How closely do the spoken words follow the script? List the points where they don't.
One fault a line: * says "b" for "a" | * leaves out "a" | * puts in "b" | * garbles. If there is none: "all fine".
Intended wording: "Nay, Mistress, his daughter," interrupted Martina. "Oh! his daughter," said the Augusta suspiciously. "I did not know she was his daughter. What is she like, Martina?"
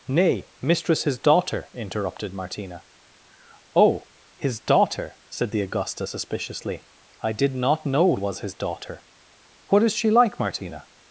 * leaves out "she"